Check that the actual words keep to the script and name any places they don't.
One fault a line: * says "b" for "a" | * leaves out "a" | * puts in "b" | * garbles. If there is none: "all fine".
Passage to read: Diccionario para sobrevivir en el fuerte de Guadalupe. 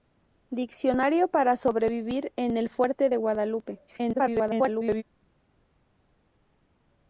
* garbles